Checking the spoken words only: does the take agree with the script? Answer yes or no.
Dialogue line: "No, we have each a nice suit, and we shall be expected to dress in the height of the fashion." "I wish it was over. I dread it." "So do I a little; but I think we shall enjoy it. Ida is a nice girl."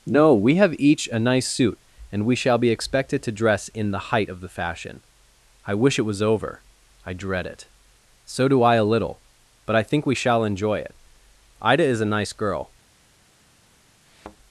yes